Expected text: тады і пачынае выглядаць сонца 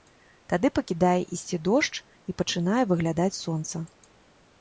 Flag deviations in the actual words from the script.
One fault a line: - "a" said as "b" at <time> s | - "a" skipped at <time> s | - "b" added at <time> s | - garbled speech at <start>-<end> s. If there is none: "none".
- "пакідае ісці дождж" added at 0.8 s